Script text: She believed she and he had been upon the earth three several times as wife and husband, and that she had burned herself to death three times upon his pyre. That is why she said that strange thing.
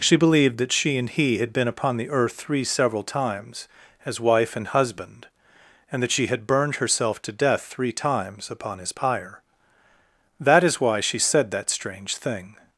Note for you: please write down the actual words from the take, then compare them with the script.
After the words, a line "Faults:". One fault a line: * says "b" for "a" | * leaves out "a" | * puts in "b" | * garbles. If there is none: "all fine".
She believed that she and he had been upon the earth three several times as wife and husband, and that she had burned herself to death three times upon his pyre. That is why she said that strange thing.
Faults:
* puts in "that"